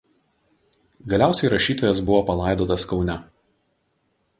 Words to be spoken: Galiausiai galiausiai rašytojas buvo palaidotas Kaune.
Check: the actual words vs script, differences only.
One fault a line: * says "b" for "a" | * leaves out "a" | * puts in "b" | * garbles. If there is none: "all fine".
* leaves out "galiausiai"